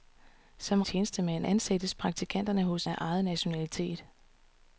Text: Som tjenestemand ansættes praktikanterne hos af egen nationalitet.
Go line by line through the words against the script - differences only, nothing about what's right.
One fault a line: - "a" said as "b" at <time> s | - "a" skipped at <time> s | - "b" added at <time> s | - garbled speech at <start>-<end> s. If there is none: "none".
none